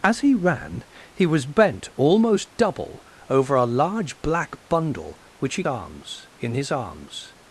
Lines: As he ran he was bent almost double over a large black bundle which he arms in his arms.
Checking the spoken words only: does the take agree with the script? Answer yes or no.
yes